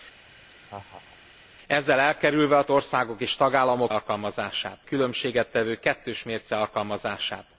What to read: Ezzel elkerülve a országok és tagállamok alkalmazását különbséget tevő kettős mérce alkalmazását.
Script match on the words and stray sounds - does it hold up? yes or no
no